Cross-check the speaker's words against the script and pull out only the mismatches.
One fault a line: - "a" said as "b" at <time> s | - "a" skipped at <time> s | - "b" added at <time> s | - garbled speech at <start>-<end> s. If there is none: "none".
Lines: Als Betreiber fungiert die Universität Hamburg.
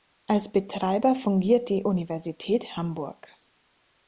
none